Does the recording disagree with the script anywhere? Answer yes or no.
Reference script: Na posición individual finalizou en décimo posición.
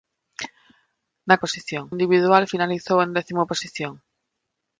no